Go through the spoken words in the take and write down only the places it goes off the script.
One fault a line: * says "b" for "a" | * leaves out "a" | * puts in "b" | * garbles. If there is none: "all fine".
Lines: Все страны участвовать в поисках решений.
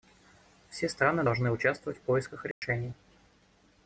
* puts in "должны"